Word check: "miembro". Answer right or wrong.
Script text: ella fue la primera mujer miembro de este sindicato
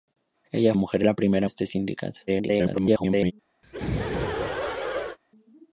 wrong